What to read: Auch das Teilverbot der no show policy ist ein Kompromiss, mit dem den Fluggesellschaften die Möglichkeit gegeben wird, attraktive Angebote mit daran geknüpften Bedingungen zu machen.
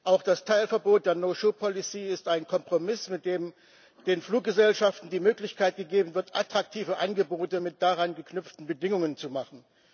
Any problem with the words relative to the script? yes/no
no